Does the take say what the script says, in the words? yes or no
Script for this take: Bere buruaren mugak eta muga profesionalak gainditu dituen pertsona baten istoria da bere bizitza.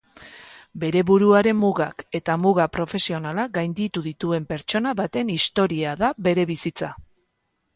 yes